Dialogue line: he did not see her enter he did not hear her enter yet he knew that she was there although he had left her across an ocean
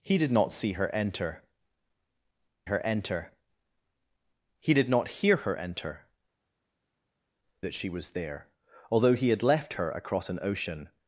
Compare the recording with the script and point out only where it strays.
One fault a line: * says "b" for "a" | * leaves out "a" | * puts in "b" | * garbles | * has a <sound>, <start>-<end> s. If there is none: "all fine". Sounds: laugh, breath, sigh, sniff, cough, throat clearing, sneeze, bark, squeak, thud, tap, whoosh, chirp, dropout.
* puts in "her enter"
* leaves out "yet he knew"